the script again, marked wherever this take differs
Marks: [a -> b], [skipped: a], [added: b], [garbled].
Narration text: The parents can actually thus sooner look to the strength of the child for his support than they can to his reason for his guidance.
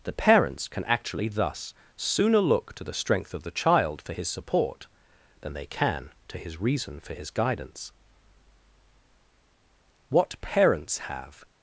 The parents can actually thus sooner look to the strength of the child for his support than they can to his reason for his guidance. [added: What Parents have]